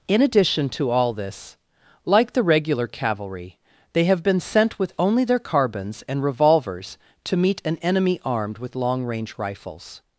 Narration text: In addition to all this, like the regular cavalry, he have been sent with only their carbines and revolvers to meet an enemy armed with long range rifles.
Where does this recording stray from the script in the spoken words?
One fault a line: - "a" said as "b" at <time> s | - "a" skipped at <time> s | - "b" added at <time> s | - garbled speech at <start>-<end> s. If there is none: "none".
- "he" said as "they" at 3.9 s